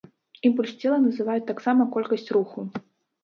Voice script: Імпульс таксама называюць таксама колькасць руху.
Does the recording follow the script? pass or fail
fail